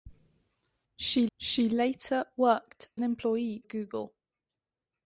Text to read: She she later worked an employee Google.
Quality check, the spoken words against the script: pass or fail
pass